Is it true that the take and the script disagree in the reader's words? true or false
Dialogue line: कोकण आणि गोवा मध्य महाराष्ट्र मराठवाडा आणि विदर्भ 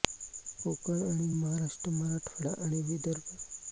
true